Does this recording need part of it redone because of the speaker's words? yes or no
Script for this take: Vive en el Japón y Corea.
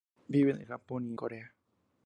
no